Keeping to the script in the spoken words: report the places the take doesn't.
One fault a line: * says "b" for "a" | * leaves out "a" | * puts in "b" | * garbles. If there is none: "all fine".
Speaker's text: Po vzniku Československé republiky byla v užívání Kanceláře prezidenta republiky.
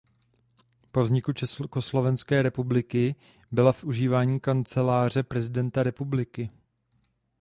all fine